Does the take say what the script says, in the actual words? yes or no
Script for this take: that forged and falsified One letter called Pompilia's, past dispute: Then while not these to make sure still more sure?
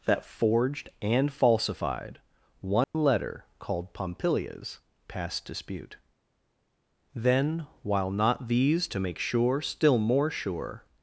yes